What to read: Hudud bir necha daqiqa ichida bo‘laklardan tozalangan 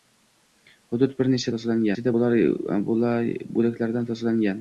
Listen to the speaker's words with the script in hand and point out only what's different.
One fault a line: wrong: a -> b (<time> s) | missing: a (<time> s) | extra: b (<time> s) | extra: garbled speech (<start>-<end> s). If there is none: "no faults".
wrong: daqiqa -> tozalangan (1.5 s)